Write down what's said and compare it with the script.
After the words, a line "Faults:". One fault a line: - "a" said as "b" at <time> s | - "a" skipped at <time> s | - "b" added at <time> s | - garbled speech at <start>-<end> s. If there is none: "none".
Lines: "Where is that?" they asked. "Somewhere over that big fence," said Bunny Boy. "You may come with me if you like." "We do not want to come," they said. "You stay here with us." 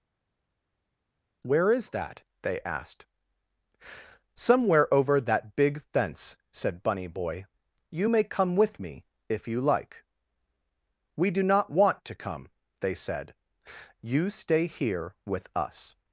"Where is that?" they asked. "Somewhere over that big fence," said Bunny Boy. "You may come with me if you like." "We do not want to come," they said. "You stay here with us."
Faults:
none